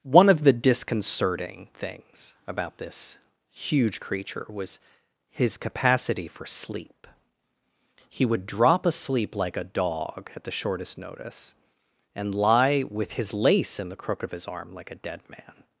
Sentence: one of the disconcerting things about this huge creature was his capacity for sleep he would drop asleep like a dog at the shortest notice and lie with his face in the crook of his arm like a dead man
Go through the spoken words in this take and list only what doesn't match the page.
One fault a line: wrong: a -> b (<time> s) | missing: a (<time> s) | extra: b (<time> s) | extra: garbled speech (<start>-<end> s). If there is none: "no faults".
wrong: face -> lace (13.3 s)